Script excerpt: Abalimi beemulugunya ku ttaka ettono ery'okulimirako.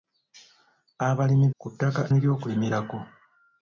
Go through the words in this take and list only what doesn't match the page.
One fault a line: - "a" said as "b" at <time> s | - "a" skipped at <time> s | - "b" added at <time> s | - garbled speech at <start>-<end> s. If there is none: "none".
- "beemulugunya" skipped at 1.5 s
- "ettono" skipped at 2.0 s